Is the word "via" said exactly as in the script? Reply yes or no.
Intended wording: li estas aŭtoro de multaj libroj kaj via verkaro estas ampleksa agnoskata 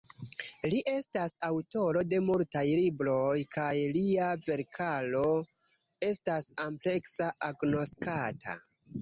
no